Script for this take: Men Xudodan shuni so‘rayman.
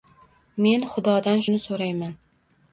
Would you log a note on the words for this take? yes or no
no